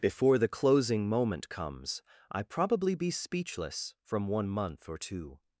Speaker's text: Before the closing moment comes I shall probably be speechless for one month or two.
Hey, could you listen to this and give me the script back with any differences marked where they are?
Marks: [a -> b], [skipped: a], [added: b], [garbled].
Before the closing moment comes I [skipped: shall] probably be speechless [for -> from] one month or two.